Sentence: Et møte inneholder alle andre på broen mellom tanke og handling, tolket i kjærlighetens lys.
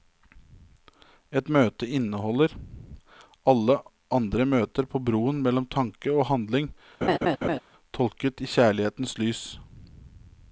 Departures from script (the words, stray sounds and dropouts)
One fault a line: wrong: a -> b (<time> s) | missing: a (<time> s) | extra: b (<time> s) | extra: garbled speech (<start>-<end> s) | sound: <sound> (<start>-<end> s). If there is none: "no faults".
extra: møter (4.5 s)
sound: laugh (7.0-7.6 s)